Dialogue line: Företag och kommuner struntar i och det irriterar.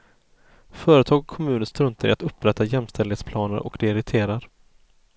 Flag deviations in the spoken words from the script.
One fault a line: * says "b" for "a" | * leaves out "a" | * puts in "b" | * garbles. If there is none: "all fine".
* puts in "att upprätta jämställdhetsplaner"